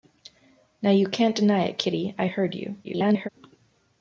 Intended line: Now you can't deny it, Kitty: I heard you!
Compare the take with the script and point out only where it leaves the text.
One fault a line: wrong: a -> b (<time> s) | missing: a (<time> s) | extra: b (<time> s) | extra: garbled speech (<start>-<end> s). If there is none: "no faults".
extra: garbled speech (2.8-3.3 s)